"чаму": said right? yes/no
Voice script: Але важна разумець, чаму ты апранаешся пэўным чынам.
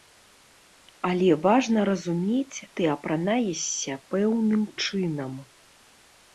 no